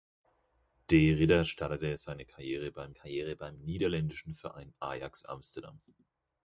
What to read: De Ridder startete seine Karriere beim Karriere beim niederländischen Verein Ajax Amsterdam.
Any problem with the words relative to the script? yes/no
no